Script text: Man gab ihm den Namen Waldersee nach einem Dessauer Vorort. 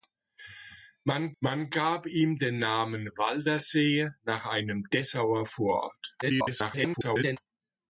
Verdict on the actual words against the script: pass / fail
fail